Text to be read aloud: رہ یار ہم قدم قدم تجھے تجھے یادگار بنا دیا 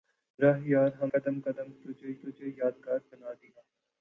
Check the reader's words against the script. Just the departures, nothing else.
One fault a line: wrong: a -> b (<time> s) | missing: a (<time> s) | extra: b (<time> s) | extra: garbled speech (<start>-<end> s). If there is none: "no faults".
no faults